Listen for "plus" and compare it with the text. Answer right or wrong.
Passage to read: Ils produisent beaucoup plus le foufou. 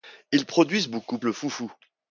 wrong